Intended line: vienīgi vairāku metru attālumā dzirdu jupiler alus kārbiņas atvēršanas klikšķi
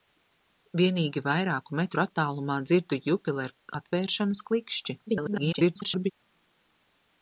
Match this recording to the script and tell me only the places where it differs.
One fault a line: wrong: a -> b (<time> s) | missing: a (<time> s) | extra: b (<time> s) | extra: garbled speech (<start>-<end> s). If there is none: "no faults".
missing: alus kārbiņas (3.5 s)
extra: garbled speech (5.1-6.1 s)